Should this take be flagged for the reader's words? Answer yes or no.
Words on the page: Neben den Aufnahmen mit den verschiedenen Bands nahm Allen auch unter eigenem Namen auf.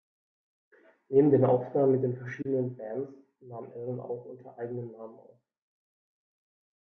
no